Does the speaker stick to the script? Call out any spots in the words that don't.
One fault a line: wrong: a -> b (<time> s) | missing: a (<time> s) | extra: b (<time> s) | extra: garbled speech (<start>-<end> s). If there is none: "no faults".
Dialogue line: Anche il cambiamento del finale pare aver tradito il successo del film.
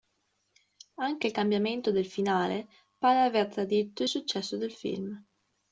no faults